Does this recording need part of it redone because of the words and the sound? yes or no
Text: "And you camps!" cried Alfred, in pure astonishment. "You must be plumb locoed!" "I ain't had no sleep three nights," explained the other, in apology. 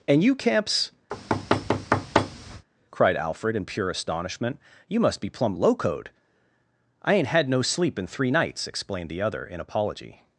yes